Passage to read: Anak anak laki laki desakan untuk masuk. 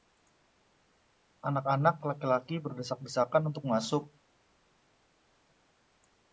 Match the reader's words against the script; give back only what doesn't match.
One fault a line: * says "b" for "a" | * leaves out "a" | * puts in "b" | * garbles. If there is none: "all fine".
* puts in "berdesak"